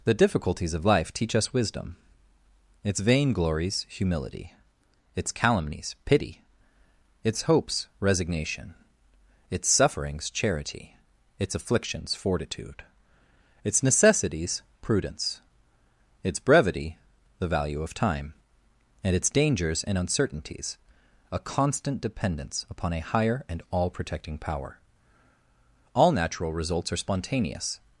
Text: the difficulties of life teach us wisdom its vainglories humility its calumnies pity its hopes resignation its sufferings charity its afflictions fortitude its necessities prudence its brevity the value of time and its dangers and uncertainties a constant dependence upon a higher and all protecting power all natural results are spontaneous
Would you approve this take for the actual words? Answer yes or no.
yes